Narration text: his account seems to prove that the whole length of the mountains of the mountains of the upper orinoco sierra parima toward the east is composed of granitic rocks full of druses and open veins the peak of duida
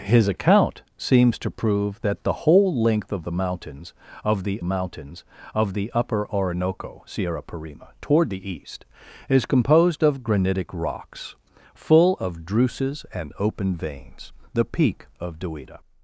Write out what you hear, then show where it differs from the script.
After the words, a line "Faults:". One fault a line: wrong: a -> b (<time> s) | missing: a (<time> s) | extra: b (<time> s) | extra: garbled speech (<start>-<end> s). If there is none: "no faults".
his account seems to prove that the whole length of the mountains of the mountains of the upper orinoco sierra parima toward the east is composed of granitic rocks full of druses and open veins the peak of duida
Faults:
no faults